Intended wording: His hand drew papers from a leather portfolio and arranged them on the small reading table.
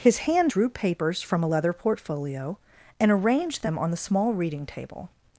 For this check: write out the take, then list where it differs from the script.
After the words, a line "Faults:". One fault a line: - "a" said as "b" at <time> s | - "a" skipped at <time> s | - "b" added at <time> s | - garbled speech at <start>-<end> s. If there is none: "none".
His hand drew papers from a leather portfolio and arranged them on the small reading table.
Faults:
none